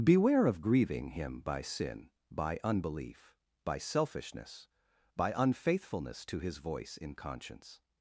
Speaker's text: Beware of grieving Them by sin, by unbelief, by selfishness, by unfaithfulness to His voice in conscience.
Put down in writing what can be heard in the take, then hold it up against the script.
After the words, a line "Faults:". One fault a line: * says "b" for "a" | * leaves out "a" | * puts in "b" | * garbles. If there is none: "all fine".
Beware of grieving Him by sin, by unbelief, by selfishness, by unfaithfulness to His voice in conscience.
Faults:
* says "Him" for "Them"